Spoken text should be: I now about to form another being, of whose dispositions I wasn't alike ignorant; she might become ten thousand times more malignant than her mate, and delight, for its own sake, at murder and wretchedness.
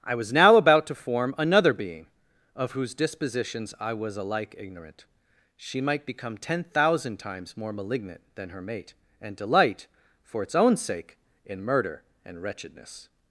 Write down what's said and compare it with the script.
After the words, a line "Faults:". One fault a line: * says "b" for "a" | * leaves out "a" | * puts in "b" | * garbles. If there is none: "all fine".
I was now about to form another being, of whose dispositions I was alike ignorant; she might become ten thousand times more malignant than her mate, and delight, for its own sake, in murder and wretchedness.
Faults:
* puts in "was"
* says "was" for "wasn't"
* says "in" for "at"